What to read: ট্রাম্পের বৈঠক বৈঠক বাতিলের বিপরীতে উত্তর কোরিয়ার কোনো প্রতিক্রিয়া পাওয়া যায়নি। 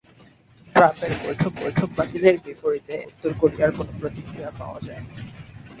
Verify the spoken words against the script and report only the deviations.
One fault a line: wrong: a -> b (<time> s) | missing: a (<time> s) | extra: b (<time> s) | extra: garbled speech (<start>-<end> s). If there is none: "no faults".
no faults